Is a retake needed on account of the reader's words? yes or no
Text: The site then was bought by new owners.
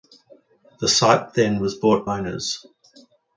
yes